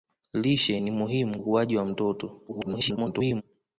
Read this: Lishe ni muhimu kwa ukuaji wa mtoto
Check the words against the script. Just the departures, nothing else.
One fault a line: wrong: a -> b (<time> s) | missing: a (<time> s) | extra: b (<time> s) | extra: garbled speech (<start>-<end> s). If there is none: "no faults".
missing: kwa (1.4 s)
extra: garbled speech (2.5-3.4 s)